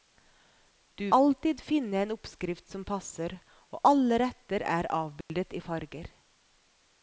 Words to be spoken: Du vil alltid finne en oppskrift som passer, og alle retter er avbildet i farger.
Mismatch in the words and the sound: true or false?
true